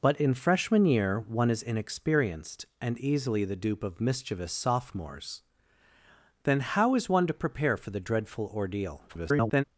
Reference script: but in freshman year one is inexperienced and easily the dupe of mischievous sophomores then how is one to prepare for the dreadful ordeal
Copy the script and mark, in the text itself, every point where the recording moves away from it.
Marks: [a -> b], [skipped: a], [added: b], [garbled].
but in freshman year one is inexperienced and easily the dupe of mischievous sophomores then how is one to prepare for the dreadful ordeal [garbled]